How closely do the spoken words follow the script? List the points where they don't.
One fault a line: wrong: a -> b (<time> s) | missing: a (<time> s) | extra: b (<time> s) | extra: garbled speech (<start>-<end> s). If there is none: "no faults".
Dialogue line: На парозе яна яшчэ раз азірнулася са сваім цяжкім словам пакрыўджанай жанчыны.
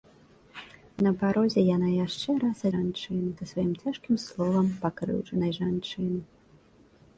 wrong: азірнулася -> жанчыны (2.7 s)